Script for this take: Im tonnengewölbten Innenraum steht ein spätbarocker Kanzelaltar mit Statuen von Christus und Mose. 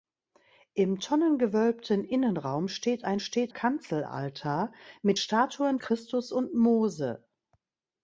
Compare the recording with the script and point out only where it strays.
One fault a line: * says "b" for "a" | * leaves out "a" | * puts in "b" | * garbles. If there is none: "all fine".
* says "steht" for "spätbarocker"
* leaves out "von"